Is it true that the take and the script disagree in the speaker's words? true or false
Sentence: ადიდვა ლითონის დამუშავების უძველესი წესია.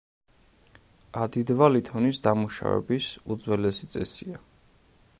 false